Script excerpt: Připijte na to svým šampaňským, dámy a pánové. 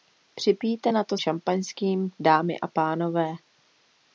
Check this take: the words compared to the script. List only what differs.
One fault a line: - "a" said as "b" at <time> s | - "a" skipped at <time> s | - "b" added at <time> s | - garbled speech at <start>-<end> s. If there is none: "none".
- "svým" skipped at 1.2 s